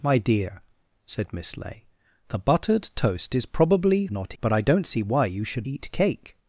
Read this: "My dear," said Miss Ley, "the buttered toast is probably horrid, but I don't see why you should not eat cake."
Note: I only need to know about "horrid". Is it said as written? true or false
false